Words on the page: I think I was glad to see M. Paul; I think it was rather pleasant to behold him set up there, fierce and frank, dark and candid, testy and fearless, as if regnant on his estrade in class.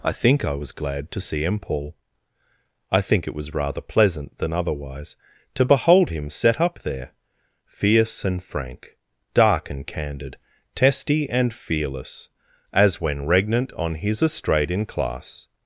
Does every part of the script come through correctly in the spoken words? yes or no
no